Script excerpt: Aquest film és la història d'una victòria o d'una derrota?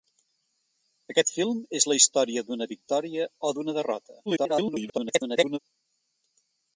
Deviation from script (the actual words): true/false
true